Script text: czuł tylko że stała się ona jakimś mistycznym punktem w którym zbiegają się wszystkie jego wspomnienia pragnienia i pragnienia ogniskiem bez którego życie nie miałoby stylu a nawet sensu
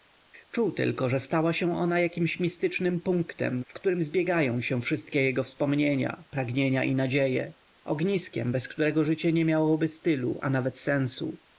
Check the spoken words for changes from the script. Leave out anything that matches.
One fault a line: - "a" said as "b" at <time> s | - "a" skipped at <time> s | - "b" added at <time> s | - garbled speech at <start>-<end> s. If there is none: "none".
- "pragnienia" said as "nadzieje" at 7.0 s